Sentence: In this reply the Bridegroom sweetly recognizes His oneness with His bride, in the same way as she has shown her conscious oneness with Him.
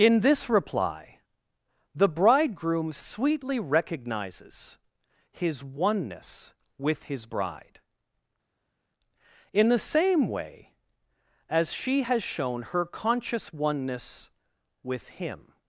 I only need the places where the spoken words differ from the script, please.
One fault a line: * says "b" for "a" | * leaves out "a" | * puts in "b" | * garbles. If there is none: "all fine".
all fine